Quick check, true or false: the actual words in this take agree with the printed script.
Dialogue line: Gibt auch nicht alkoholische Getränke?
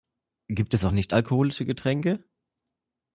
false